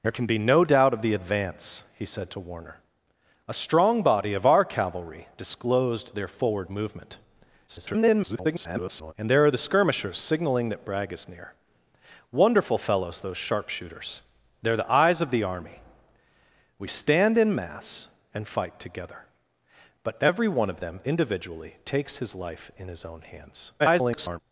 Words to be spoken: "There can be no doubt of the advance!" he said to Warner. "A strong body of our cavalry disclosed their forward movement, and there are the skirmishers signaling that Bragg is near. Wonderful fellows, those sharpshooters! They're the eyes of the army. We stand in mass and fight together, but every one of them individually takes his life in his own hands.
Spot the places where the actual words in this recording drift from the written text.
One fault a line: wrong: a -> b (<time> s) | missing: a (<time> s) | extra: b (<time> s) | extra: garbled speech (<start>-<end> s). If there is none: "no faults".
extra: garbled speech (7.7-9.1 s)
extra: garbled speech (23.8-24.4 s)